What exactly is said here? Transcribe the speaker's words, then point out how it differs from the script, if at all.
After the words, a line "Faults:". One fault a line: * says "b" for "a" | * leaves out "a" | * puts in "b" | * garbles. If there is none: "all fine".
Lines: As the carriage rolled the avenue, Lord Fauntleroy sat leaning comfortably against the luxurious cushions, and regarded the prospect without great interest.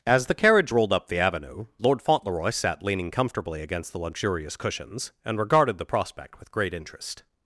As the carriage rolled up the avenue, Lord Fauntleroy sat leaning comfortably against the luxurious cushions, and regarded the prospect with great interest.
Faults:
* puts in "up"
* says "with" for "without"